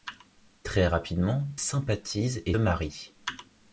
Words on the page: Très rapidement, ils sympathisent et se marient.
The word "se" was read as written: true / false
false